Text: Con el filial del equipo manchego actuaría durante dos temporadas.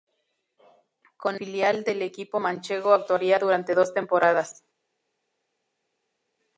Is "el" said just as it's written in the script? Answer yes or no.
no